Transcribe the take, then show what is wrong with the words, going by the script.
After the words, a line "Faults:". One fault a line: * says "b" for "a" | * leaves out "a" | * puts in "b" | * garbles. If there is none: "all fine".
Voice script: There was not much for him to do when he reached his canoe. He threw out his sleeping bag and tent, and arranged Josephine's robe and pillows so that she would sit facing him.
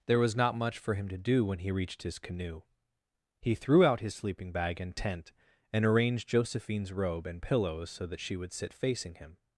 There was not much for him to do when he reached his canoe. He threw out his sleeping bag and tent, and arranged Josephine's robe and pillows so that she would sit facing him.
Faults:
all fine